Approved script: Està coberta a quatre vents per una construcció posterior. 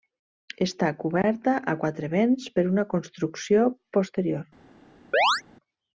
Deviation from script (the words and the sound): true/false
true